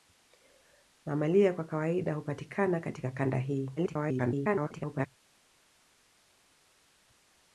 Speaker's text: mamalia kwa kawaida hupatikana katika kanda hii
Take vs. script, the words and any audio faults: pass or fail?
fail